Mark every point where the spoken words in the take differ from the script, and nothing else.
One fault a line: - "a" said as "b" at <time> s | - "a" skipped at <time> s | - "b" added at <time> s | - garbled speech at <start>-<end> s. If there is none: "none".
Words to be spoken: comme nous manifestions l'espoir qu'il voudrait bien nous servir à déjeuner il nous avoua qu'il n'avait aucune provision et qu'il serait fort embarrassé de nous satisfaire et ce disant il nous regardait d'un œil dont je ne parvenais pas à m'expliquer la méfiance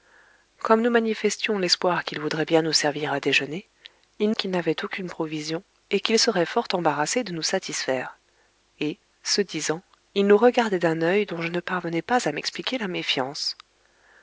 - "nous avoua" skipped at 4.3 s